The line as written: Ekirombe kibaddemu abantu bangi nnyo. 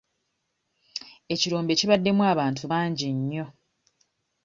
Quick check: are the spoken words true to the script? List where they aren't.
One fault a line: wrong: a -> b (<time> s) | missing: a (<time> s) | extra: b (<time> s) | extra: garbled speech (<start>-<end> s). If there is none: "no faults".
no faults